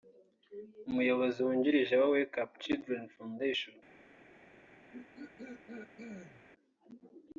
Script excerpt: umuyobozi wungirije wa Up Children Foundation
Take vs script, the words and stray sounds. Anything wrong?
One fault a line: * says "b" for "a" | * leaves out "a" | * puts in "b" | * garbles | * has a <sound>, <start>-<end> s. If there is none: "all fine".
* puts in "Wake"
* has a throat clearing, 4.9-6.4 s